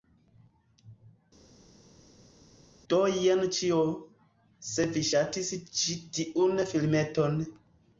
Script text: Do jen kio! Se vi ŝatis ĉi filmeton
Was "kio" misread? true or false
true